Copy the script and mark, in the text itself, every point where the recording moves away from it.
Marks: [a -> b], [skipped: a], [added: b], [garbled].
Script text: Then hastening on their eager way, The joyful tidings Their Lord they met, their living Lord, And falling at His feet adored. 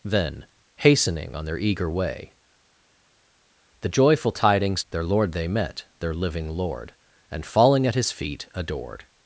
Then hastening on their eager way, The joyful tidings Their Lord they met, their living Lord, And falling at His feet adored.